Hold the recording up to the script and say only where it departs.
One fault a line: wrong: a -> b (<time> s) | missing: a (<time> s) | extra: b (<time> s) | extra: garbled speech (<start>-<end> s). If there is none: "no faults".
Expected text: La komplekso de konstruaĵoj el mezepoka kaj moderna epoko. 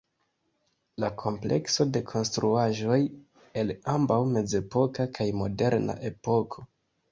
extra: ambaŭ (4.0 s)